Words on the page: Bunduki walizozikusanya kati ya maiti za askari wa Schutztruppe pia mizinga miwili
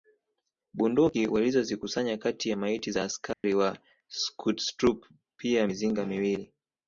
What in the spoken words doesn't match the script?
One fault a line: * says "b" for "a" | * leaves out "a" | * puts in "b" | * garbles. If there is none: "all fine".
all fine